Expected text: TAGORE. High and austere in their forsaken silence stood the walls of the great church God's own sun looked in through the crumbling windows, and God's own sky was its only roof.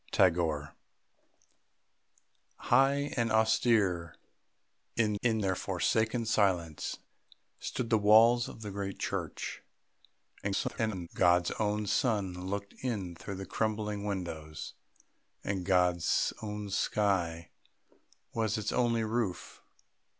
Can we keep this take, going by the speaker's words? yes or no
no